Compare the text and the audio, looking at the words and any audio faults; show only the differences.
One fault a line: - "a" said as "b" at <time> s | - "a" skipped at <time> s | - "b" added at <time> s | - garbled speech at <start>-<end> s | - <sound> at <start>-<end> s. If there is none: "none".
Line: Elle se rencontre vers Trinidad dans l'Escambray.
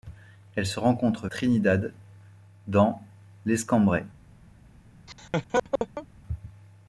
- "vers" skipped at 1.3 s
- laugh at 5.1-6.1 s